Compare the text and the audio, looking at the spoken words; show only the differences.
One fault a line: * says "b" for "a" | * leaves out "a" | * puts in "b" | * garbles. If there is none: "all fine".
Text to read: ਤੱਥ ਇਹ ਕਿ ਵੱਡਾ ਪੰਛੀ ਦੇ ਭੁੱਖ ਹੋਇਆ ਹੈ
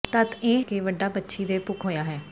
all fine